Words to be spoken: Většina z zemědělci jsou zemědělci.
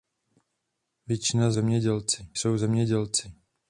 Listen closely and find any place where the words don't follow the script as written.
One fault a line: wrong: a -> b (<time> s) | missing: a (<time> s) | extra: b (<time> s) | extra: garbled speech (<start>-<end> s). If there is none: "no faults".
no faults